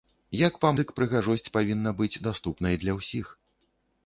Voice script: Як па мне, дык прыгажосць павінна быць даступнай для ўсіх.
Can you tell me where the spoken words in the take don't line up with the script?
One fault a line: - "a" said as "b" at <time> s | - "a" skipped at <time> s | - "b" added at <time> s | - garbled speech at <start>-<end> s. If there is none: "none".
- "мне" skipped at 0.7 s